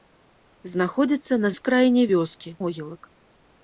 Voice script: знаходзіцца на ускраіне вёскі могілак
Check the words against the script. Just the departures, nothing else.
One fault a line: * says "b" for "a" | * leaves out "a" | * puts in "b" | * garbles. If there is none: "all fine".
all fine